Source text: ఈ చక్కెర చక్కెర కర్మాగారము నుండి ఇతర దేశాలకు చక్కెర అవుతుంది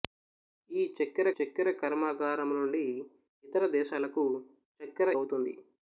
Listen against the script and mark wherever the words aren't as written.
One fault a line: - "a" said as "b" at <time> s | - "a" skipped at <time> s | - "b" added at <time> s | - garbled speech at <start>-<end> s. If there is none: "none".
none